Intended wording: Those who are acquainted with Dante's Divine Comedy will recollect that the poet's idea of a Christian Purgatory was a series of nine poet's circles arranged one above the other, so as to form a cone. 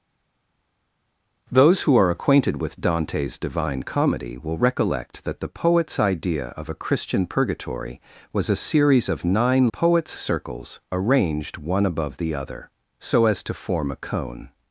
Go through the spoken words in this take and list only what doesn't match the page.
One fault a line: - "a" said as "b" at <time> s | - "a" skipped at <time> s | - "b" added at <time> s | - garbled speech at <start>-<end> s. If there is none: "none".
none